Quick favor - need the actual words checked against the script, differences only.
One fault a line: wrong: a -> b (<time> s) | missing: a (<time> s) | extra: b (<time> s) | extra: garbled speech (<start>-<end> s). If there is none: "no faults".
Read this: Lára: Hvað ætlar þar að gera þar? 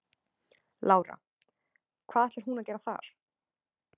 wrong: þar -> hún (2.5 s)